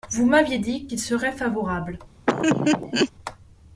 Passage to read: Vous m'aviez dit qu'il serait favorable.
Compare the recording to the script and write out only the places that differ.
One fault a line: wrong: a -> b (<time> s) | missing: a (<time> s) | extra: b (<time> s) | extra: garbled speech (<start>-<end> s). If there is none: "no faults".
no faults